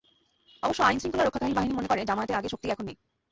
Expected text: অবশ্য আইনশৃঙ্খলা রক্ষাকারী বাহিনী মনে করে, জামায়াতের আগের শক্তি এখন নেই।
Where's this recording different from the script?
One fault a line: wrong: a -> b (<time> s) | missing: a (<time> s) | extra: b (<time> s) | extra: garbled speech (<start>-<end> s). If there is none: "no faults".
no faults